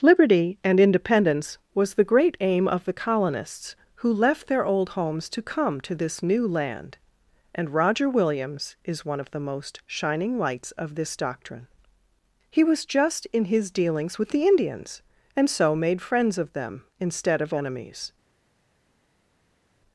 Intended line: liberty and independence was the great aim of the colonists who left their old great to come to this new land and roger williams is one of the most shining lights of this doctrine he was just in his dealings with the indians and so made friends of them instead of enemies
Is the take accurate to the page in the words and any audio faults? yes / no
no